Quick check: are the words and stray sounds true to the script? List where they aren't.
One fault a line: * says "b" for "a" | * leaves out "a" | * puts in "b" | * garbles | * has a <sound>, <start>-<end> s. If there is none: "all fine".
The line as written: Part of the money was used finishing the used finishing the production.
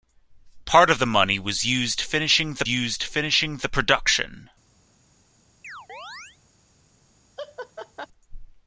* has a chirp, 5.6-6.4 s
* has a laugh, 7.4-8.1 s